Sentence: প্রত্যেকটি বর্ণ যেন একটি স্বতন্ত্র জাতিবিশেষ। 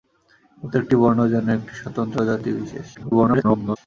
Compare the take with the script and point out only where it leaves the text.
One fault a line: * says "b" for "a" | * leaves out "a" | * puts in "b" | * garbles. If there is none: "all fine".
* garbles